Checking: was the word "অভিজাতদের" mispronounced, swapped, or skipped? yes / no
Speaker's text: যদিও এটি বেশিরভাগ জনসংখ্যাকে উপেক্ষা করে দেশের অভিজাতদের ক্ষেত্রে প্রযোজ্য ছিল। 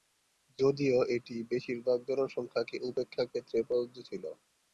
yes